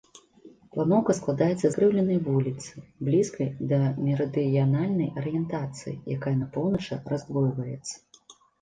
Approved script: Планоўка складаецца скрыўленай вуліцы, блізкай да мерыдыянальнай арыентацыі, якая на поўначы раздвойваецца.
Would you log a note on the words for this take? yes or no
no